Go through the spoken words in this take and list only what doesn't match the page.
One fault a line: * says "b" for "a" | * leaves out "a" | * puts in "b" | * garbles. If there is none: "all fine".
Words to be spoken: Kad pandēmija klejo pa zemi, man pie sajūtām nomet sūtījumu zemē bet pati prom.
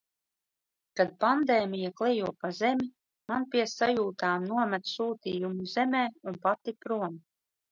* says "un" for "bet"